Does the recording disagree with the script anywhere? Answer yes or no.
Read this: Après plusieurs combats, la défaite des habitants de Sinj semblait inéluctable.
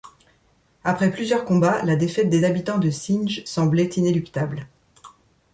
no